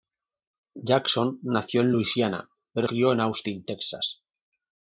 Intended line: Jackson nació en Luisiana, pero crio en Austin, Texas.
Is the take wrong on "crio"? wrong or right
right